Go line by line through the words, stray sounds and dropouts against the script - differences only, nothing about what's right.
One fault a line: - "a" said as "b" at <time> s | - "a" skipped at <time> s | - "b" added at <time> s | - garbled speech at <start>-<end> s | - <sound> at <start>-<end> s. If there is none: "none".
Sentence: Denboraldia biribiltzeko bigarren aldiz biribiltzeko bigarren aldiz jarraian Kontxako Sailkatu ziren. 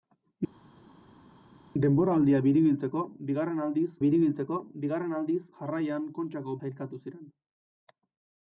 none